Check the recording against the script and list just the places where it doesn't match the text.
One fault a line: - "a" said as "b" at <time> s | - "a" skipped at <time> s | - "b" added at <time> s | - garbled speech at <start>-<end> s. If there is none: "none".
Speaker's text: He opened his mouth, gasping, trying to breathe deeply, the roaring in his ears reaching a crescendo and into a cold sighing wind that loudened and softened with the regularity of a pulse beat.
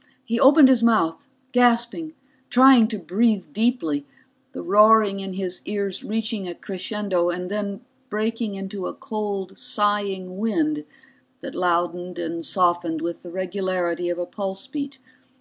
- "then breaking" added at 7.5 s